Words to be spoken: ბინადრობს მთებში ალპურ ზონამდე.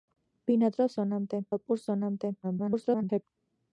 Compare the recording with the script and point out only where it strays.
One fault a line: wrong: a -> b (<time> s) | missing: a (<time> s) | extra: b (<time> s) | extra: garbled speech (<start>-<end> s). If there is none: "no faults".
wrong: მთებში -> ზონამდე (0.9 s)
extra: garbled speech (2.4-3.2 s)